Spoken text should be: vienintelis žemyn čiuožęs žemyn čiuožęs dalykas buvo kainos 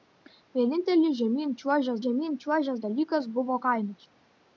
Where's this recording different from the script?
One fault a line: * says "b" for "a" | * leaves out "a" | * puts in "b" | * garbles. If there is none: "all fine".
all fine